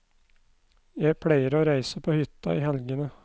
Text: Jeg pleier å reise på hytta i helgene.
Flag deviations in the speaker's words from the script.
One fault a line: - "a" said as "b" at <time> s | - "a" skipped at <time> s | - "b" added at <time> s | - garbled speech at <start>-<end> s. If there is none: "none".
none